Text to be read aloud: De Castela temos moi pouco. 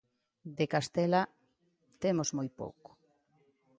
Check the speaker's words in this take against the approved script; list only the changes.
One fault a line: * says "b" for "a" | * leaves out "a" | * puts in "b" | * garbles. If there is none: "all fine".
all fine